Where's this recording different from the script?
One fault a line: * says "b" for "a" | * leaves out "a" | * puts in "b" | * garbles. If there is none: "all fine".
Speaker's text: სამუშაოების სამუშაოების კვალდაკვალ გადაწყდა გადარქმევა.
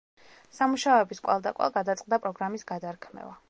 * leaves out "სამუშაოების"
* puts in "პროგრამის"